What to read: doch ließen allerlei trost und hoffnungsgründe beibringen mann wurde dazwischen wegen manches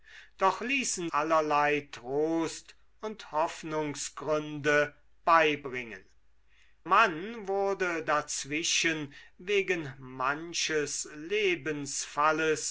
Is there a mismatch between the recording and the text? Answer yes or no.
no